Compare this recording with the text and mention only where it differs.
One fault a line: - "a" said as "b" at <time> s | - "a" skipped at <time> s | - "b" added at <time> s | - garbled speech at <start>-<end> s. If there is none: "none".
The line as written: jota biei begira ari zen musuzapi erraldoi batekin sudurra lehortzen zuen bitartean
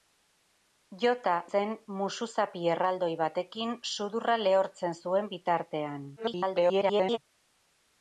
- "biei begira ari" skipped at 1.3 s
- garbled speech at 6.2-7.2 s